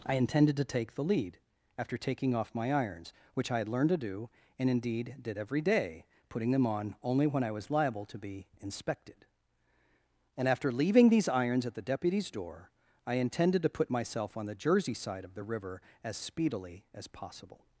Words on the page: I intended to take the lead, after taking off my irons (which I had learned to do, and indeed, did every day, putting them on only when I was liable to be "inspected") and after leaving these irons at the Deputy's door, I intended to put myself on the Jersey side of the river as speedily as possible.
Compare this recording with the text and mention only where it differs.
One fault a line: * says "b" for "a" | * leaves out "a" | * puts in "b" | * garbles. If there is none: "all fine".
all fine